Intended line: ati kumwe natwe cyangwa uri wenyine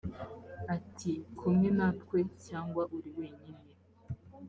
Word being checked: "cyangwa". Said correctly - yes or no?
yes